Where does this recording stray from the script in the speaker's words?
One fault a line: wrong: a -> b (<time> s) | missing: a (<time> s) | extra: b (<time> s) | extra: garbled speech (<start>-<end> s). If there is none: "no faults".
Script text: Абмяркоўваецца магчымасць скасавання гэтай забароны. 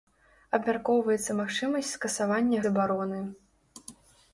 missing: гэтай (2.6 s)